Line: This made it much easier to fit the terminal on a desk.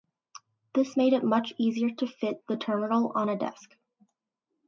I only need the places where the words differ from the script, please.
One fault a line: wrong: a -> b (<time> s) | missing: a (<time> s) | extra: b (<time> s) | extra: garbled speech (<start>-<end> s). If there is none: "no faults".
no faults